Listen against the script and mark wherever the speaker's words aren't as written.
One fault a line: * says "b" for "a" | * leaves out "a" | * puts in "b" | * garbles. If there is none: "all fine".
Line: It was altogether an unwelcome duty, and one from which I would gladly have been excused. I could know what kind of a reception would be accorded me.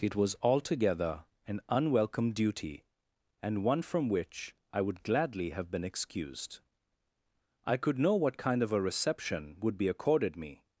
all fine